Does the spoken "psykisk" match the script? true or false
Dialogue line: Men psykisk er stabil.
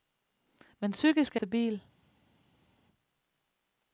true